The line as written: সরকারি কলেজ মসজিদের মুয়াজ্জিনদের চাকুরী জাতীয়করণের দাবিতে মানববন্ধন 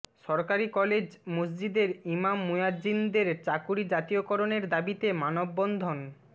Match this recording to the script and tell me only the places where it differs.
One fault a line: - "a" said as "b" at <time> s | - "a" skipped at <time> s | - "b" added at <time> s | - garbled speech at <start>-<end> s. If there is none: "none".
- "ইমাম" added at 2.1 s